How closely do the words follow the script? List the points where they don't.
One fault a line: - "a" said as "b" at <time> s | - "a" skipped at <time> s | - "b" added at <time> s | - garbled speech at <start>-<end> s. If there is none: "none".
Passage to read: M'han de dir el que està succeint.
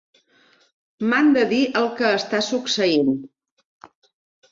none